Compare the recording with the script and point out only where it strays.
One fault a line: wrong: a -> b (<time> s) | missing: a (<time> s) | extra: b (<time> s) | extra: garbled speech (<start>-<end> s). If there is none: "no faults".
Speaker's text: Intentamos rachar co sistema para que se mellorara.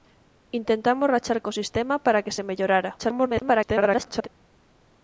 extra: garbled speech (3.0-4.3 s)